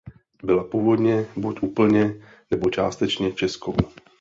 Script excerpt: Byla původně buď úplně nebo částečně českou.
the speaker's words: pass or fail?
pass